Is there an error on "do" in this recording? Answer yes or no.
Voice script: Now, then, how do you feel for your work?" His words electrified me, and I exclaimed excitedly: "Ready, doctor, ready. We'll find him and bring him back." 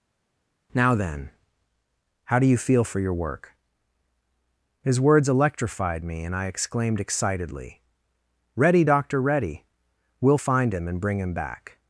no